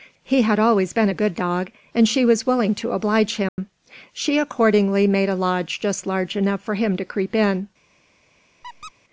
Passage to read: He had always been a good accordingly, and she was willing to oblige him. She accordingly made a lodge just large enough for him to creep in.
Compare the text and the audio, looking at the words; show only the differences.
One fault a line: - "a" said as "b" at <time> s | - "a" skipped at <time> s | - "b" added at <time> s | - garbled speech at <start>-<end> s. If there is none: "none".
- "accordingly" said as "dog" at 1.3 s